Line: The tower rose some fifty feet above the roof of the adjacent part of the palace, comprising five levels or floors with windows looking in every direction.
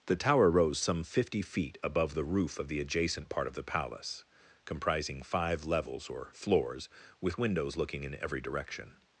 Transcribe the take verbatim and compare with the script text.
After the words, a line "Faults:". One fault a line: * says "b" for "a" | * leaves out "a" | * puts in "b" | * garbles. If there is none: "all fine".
The tower rose some fifty feet above the roof of the adjacent part of the palace, comprising five levels or floors with windows looking in every direction.
Faults:
all fine